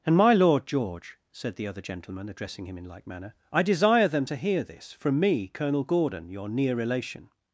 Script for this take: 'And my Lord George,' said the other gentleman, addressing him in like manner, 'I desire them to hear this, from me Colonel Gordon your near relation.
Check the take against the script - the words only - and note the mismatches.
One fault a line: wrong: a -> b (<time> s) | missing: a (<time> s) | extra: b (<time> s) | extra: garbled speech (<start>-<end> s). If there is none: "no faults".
no faults